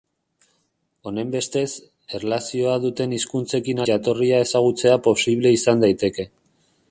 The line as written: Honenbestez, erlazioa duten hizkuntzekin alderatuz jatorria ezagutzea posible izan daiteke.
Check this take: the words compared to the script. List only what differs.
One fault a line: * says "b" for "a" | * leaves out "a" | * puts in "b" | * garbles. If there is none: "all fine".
* leaves out "alderatuz"